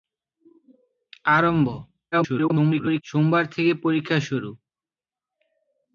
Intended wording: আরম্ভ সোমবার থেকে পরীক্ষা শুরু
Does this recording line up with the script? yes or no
no